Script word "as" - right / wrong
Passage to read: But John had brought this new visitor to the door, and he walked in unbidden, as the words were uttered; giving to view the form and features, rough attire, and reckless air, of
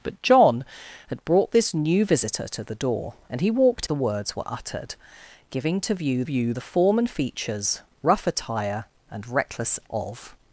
wrong